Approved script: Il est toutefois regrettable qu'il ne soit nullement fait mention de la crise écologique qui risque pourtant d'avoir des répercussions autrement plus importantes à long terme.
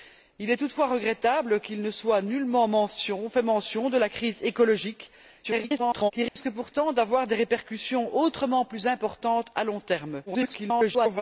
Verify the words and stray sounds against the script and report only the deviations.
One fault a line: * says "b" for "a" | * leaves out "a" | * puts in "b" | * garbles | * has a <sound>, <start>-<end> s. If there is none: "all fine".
* garbles
* has a dropout, 6.3-6.4 s
* garbles